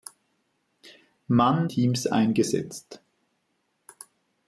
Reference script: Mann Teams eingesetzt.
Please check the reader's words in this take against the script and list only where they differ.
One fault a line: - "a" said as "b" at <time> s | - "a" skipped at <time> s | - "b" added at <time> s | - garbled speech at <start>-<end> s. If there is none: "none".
none